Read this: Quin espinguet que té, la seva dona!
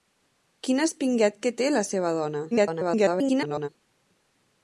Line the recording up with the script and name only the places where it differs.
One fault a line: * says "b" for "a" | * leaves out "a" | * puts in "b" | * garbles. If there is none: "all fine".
* garbles